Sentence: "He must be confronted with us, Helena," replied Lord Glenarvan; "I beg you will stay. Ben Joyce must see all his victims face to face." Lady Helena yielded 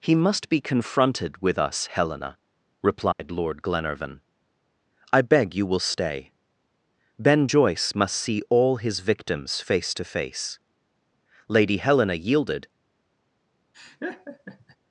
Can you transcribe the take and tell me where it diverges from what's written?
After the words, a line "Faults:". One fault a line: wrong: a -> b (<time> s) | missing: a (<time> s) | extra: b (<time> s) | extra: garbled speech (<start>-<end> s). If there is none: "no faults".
"He must be confronted with us, Helena," replied Lord Glenarvan; "I beg you will stay. Ben Joyce must see all his victims face to face." Lady Helena yielded
Faults:
no faults